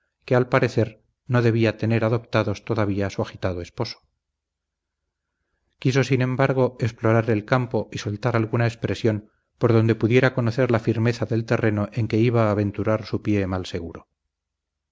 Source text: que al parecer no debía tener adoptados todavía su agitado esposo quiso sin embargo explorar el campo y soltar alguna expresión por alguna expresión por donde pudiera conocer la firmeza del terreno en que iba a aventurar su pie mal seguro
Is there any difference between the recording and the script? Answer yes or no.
yes